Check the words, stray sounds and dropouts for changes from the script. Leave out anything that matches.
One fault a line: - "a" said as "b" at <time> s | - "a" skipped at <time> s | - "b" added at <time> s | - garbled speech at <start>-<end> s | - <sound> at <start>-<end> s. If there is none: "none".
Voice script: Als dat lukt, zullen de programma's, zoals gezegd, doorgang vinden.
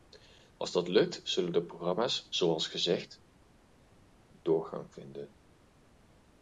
none